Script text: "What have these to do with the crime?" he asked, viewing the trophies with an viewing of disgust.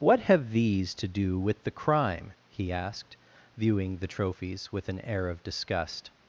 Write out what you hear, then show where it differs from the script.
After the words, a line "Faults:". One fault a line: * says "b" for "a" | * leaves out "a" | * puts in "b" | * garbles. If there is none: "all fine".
"What have these to do with the crime?" he asked, viewing the trophies with an air of disgust.
Faults:
* says "air" for "viewing"